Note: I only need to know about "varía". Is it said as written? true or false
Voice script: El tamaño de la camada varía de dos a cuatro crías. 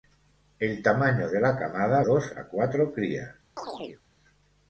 false